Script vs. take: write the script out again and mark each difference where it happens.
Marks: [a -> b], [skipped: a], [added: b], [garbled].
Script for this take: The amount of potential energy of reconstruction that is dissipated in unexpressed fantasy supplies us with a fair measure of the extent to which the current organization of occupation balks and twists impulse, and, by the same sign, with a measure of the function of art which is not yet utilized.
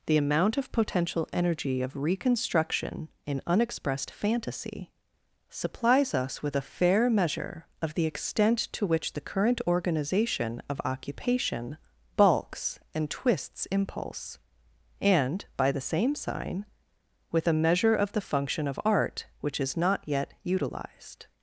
The amount of potential energy of reconstruction [skipped: that is dissipated] in unexpressed fantasy supplies us with a fair measure of the extent to which the current organization of occupation balks and twists impulse, and, by the same sign, with a measure of the function of art which is not yet utilized.